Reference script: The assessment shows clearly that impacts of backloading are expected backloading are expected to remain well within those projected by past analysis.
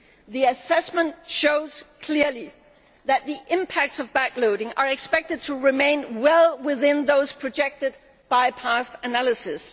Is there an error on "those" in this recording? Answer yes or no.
no